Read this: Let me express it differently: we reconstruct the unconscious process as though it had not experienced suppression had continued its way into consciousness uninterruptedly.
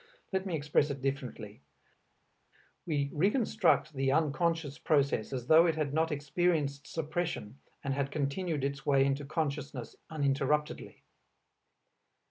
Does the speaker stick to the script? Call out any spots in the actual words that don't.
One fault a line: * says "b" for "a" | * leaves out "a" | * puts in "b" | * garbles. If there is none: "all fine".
* puts in "and"